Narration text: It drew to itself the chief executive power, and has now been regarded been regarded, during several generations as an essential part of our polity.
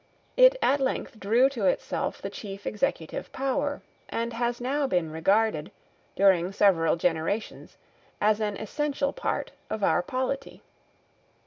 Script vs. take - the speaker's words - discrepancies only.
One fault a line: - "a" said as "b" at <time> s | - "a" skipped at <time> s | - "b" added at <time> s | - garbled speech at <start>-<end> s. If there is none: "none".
- "at length" added at 0.6 s
- "been regarded" skipped at 5.7 s